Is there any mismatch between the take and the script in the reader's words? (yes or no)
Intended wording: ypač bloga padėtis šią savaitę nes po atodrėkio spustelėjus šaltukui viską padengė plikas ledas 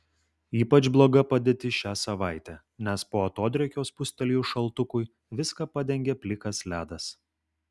no